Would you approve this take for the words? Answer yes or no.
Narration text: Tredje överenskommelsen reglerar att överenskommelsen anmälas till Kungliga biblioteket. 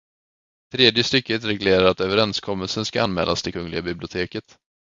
no